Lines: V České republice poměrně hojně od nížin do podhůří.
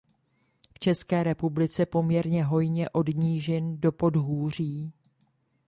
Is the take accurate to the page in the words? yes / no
yes